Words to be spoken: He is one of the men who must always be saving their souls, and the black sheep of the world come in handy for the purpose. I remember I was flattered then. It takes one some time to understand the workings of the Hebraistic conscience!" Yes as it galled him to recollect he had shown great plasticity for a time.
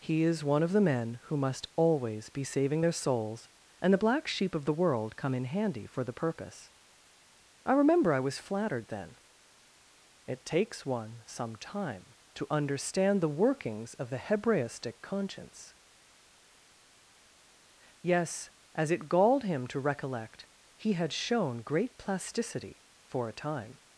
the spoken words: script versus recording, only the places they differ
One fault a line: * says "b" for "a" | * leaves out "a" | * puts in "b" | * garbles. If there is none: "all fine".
all fine